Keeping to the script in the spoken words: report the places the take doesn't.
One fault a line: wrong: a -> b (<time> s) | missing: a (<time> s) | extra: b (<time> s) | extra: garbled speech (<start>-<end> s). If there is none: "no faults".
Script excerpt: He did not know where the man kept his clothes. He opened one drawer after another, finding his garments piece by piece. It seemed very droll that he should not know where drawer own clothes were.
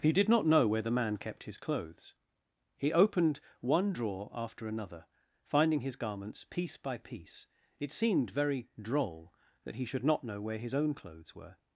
wrong: drawer -> his (10.6 s)